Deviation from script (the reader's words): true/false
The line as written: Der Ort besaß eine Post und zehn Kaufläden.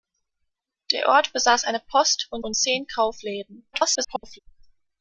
true